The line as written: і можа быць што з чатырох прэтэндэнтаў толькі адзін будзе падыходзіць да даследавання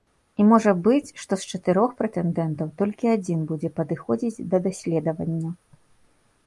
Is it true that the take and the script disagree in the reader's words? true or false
false